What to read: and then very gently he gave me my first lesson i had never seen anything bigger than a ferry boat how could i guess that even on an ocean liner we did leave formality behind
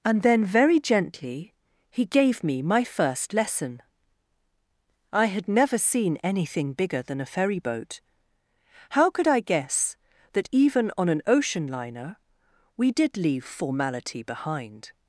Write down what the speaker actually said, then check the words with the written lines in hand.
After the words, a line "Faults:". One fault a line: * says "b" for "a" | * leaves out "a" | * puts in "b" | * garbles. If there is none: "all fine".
and then very gently he gave me my first lesson i had never seen anything bigger than a ferry boat how could i guess that even on an ocean liner we did leave formality behind
Faults:
all fine